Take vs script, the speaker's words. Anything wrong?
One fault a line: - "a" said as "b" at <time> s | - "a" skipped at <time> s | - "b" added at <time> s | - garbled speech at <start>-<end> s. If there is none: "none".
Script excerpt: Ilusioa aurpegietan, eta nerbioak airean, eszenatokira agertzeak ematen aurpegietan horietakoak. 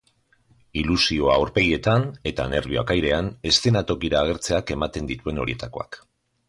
- "aurpegietan" said as "dituen" at 5.1 s